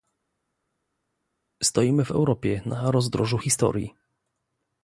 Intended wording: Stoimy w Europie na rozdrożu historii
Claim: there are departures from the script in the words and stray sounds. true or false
false